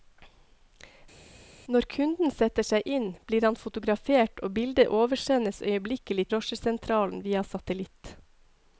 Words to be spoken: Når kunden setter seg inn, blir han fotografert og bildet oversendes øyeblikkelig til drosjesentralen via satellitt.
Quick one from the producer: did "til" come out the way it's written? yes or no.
no